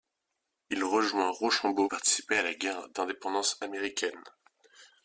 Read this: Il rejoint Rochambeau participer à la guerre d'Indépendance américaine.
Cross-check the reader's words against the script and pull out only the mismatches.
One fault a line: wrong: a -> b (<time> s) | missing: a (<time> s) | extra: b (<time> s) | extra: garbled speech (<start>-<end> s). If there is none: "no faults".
no faults